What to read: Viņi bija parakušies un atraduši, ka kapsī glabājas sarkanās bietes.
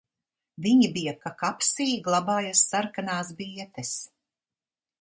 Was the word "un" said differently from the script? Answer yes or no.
yes